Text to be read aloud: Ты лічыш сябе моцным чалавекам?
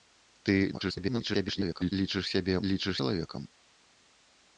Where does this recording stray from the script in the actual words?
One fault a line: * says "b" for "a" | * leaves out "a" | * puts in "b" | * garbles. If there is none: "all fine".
* garbles
* says "лічыш" for "моцным"